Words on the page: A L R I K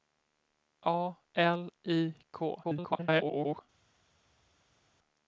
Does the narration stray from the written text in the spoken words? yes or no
yes